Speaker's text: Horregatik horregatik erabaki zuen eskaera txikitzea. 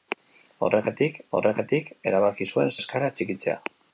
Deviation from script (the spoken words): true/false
false